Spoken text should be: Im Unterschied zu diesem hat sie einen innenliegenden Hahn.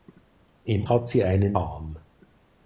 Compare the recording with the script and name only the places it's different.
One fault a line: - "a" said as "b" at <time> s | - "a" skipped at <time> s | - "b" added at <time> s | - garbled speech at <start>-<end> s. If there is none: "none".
- "Unterschied zu diesem" skipped at 0.9 s
- "innenliegenden" skipped at 1.6 s